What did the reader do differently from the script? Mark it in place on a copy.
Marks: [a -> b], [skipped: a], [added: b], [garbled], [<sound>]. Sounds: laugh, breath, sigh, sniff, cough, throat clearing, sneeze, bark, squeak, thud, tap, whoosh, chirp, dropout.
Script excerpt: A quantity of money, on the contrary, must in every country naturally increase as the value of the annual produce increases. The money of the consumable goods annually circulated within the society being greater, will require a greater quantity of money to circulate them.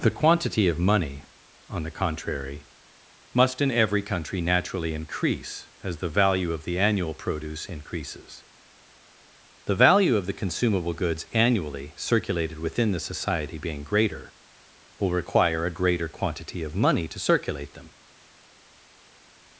[A -> The] quantity of money, on the contrary, must in every country naturally increase as the value of the annual produce increases. The [money -> value] of the consumable goods annually circulated within the society being greater, will require a greater quantity of money to circulate them.